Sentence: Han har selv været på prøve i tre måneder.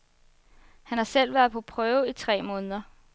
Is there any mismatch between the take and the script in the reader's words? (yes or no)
no